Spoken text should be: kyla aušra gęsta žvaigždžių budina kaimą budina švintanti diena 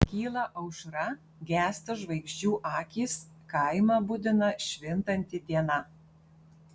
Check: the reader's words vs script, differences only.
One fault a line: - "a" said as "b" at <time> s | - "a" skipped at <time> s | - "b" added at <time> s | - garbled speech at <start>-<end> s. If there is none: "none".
- "budina" said as "akys" at 2.7 s